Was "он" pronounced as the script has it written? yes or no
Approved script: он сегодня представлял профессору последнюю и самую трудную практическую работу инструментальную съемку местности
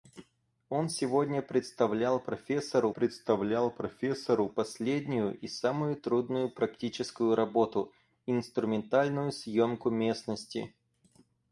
yes